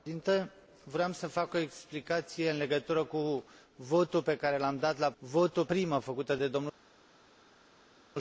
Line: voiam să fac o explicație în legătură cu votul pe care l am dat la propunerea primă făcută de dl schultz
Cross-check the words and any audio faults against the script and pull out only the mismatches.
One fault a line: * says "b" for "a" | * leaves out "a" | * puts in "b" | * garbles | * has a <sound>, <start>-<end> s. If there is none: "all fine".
* says "votul" for "propunerea"